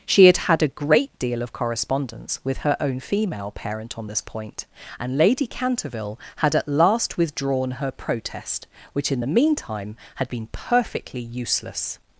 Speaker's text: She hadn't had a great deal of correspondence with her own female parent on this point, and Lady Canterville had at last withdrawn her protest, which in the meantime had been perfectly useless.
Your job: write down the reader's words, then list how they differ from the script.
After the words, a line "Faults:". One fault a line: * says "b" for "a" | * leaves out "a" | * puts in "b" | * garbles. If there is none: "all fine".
She had had a great deal of correspondence with her own female parent on this point, and Lady Canterville had at last withdrawn her protest, which in the meantime had been perfectly useless.
Faults:
* says "had" for "hadn't"